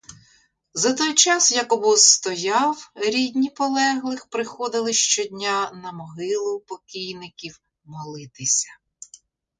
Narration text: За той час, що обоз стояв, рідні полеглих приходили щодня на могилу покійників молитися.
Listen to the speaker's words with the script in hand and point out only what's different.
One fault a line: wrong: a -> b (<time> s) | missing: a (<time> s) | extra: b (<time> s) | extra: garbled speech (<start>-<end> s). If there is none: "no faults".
wrong: що -> як (1.5 s)